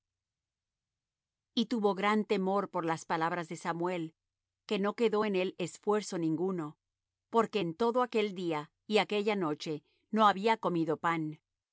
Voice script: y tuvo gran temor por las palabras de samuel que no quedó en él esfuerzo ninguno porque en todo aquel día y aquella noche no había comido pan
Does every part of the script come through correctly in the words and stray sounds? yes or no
yes